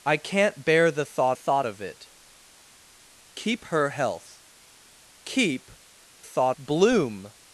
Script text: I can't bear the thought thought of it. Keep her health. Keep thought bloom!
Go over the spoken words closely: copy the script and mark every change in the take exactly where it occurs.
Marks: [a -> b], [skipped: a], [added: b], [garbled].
I can't bear the thought thought of it. Keep her health. Keep thought bloom!